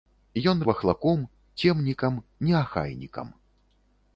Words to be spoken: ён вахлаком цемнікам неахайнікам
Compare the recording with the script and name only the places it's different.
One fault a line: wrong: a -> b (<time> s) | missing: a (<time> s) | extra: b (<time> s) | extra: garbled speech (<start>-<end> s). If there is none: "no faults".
no faults